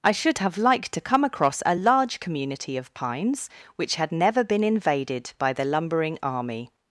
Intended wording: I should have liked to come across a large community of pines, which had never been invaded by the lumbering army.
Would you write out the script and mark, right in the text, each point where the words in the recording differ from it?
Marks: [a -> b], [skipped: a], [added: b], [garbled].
I should have liked to come across a large community of pines, which had never been invaded by the lumbering army.